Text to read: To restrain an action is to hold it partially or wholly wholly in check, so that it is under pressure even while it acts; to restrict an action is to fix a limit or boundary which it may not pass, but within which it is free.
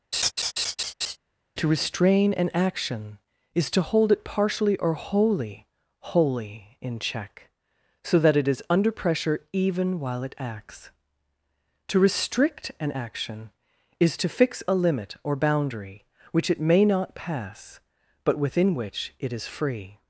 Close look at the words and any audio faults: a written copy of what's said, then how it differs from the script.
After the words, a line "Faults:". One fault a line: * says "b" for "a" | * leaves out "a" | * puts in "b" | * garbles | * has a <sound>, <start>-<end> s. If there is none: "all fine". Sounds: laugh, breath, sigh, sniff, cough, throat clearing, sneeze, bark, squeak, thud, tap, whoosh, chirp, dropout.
To restrain an action is to hold it partially or wholly wholly in check, so that it is under pressure even while it acts; to restrict an action is to fix a limit or boundary which it may not pass, but within which it is free.
Faults:
* has a laugh, 0.1-1.2 s